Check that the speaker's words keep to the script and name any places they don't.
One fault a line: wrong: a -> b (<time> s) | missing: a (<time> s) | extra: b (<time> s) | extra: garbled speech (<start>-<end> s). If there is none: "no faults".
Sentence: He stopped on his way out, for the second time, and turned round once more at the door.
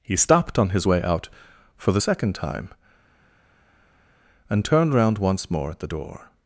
no faults